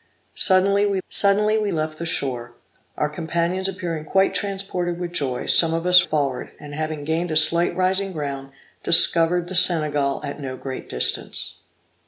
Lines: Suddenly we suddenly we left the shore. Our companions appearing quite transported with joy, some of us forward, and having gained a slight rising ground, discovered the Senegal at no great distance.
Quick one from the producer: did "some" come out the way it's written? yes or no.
yes